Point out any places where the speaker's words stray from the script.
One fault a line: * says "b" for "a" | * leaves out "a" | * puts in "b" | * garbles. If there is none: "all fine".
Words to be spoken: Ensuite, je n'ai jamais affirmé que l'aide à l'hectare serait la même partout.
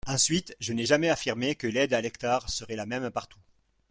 all fine